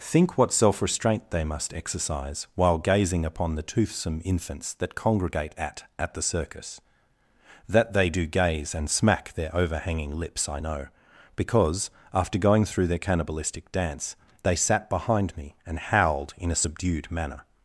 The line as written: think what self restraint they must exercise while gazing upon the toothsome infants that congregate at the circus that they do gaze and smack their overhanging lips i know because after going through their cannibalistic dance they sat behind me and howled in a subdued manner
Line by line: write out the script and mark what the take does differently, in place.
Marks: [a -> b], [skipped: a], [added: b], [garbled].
think what self restraint they must exercise while gazing upon the toothsome infants that congregate at [added: at] the circus that they do gaze and smack their overhanging lips i know because after going through their cannibalistic dance they sat behind me and howled in a subdued manner